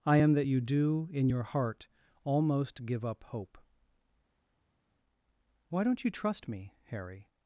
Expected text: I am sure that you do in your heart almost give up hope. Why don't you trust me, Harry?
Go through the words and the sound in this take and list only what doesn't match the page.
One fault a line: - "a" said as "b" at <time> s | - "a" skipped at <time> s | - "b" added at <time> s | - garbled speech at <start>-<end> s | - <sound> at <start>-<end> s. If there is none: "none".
- "sure" skipped at 0.3 s